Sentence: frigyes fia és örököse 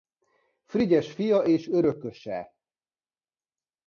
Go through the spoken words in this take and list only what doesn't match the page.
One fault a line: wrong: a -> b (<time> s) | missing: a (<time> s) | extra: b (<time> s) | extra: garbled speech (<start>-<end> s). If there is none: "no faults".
no faults